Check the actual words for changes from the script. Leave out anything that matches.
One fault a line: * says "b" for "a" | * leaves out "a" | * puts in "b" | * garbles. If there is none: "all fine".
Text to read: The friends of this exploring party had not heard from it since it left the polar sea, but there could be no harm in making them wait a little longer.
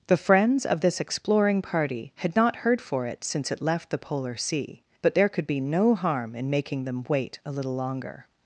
* says "for" for "from"